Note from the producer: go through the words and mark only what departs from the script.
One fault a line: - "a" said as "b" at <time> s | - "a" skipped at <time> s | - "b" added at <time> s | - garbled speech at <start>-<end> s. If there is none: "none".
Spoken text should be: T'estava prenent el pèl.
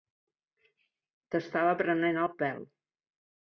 none